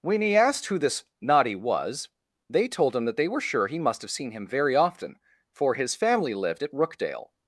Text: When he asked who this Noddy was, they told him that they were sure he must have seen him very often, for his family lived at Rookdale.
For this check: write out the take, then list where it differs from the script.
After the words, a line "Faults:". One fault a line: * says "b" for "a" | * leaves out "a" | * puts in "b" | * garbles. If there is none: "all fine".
When he asked who this Noddy was, they told him that they were sure he must have seen him very often, for his family lived at Rookdale.
Faults:
all fine